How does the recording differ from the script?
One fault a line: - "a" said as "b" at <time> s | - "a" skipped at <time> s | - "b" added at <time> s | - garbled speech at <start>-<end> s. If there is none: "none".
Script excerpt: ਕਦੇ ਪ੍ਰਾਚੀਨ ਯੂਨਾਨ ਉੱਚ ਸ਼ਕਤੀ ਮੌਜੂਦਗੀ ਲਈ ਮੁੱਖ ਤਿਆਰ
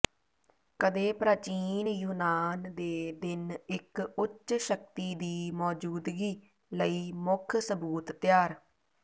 - "ਦੇ ਦਿਨ ਇੱਕ" added at 2.8 s
- "ਦੀ" added at 5.2 s
- "ਸਬੂਤ" added at 7.6 s